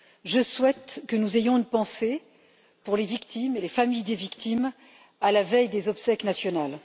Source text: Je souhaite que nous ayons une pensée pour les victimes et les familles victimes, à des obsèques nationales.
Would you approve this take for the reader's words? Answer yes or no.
no